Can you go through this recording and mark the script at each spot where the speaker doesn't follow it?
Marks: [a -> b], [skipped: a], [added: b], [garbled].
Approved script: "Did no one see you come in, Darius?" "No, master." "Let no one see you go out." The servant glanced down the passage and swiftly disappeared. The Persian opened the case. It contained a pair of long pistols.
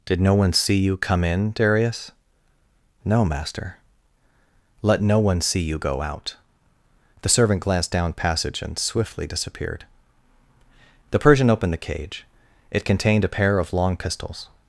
"Did no one see you come in, Darius?" "No, master." "Let no one see you go out." The servant glanced down [skipped: the] passage and swiftly disappeared. The Persian opened the [case. -> cage] It contained a pair of long pistols.